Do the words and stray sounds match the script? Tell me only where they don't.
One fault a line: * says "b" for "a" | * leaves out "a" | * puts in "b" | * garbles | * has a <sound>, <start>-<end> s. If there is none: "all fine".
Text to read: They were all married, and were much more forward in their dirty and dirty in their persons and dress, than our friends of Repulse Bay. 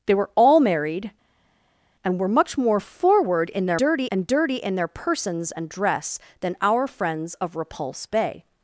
all fine